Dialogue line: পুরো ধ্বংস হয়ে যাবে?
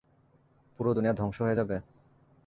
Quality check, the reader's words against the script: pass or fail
fail